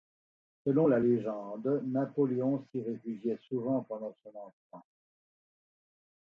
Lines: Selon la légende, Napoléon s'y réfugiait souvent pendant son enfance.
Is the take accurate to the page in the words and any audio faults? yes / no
yes